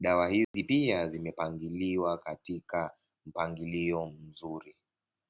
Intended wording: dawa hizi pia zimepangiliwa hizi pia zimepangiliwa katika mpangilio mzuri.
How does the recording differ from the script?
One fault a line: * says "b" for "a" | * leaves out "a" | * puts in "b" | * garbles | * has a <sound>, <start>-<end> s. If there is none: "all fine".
* has a dropout, 0.4-0.5 s
* leaves out "hizi pia zimepangiliwa"